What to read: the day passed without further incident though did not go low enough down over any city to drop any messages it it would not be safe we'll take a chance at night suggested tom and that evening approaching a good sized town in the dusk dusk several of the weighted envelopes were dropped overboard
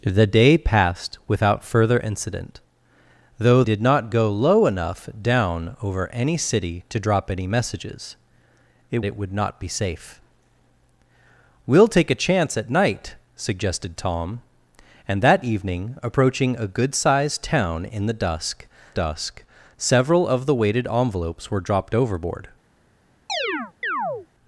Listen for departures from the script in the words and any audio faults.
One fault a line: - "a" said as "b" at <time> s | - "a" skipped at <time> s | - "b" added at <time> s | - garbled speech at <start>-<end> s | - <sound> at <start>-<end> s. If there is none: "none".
- chirp at 23.3-24.3 s